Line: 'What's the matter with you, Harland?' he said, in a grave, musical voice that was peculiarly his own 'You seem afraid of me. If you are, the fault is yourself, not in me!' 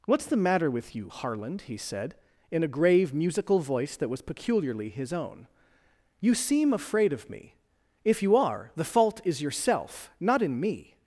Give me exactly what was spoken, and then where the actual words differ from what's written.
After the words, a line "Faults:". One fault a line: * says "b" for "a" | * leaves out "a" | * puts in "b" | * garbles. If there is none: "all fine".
'What's the matter with you, Harland?' he said, in a grave, musical voice that was peculiarly his own 'You seem afraid of me. If you are, the fault is yourself, not in me!'
Faults:
all fine